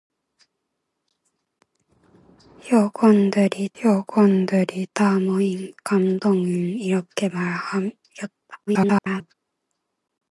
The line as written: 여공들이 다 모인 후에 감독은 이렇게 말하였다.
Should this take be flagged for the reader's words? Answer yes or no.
yes